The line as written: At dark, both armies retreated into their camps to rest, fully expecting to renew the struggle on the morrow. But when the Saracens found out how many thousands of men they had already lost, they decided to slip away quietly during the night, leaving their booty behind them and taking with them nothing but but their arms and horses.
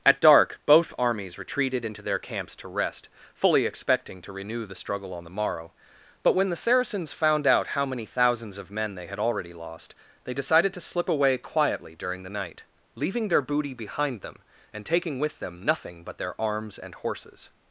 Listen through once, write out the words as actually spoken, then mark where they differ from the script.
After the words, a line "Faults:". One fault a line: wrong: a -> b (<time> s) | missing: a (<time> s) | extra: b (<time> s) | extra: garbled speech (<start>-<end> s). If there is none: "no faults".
At dark, both armies retreated into their camps to rest, fully expecting to renew the struggle on the morrow. But when the Saracens found out how many thousands of men they had already lost, they decided to slip away quietly during the night, leaving their booty behind them and taking with them nothing but their arms and horses.
Faults:
missing: but (16.2 s)